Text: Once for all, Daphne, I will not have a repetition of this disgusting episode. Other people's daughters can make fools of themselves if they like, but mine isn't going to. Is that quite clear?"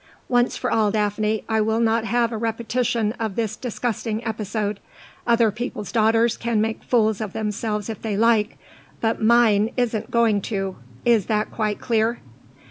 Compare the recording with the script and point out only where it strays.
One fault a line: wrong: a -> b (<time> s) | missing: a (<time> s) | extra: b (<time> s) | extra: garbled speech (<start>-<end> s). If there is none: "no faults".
no faults